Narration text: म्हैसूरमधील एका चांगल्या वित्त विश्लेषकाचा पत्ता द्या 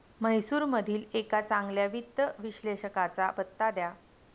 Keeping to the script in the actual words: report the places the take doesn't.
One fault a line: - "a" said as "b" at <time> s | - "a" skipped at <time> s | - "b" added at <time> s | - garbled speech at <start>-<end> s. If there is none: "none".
none